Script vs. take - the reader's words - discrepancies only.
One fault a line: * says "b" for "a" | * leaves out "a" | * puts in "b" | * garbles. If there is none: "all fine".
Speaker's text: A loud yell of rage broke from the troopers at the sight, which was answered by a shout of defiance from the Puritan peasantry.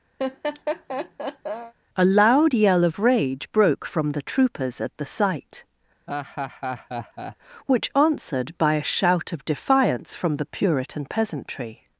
* leaves out "was"